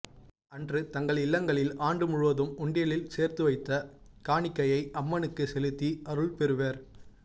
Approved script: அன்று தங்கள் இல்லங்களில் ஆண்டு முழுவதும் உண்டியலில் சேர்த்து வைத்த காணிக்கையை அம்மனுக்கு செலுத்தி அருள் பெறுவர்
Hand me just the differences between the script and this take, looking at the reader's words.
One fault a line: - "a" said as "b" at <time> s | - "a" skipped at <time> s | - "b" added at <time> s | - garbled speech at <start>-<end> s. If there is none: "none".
none